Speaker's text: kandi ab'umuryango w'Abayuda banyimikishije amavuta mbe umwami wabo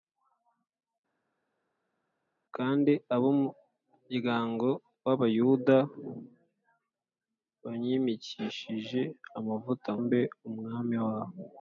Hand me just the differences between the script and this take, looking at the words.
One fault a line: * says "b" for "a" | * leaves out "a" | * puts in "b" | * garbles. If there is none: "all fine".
all fine